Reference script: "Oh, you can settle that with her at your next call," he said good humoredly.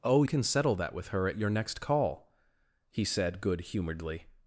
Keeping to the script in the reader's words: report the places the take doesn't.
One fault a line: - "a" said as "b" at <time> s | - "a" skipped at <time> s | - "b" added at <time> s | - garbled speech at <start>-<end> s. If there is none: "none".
- "you" skipped at 0.2 s